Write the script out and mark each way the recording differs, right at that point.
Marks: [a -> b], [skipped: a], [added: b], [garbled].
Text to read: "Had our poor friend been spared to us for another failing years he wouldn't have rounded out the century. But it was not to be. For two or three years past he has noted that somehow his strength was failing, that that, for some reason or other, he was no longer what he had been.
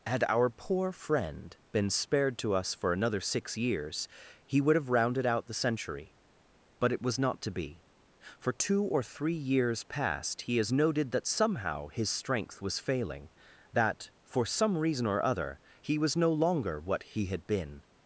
"Had our poor friend been spared to us for another [failing -> six] years he [wouldn't -> would] have rounded out the century. But it was not to be. For two or three years past he has noted that somehow his strength was failing, that [skipped: that,] for some reason or other, he was no longer what he had been.